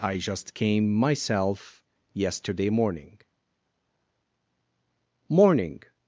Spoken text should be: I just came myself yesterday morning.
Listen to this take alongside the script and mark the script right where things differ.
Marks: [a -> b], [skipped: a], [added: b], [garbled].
I just came myself yesterday morning. [added: morning]